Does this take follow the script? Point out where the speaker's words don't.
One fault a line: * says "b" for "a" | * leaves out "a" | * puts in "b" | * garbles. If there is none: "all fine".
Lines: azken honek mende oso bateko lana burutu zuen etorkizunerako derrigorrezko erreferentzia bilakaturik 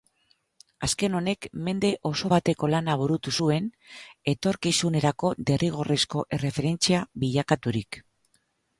all fine